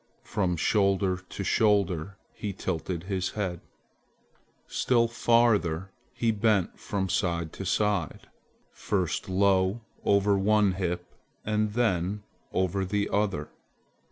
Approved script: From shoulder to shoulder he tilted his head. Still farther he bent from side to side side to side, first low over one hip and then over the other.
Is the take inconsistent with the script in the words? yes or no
yes